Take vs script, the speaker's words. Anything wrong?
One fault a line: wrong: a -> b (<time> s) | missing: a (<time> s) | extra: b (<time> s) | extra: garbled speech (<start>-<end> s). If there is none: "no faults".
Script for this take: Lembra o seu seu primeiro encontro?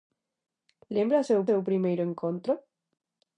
no faults